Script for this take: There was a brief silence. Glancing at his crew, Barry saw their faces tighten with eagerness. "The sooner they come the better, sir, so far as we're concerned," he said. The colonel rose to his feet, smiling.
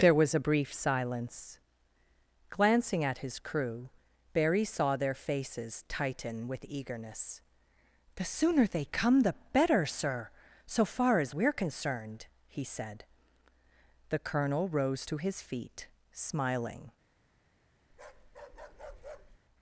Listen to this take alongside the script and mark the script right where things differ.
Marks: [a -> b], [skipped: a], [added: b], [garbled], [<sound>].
There was a brief silence. Glancing at his crew, Barry saw their faces tighten with eagerness. "The sooner they come the better, sir, so far as we're concerned," he said. The colonel rose to his feet, smiling. [bark]